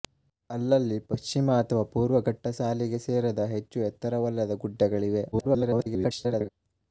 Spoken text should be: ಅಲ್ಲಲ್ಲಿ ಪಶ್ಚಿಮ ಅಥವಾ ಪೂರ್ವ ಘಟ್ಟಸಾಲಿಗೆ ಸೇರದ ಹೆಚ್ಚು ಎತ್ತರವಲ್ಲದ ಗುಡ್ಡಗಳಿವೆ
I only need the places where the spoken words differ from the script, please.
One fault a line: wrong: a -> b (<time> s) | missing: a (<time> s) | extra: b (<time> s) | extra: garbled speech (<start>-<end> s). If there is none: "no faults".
extra: garbled speech (5.3-6.5 s)